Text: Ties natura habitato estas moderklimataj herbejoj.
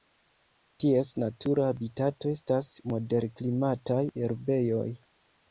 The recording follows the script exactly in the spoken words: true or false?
true